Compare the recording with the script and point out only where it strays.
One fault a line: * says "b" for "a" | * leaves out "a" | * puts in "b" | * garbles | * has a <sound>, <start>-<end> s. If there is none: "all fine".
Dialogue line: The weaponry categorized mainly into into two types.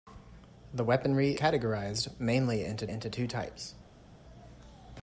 all fine